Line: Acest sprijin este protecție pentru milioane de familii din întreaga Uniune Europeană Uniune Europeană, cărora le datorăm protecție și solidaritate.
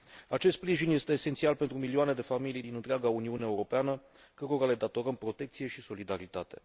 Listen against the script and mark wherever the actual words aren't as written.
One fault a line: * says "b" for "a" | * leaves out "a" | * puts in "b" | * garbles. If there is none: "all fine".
* says "esențial" for "protecție"
* leaves out "Uniune Europeană"